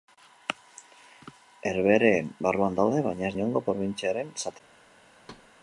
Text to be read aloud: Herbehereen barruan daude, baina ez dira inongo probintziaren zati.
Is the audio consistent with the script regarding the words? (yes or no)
no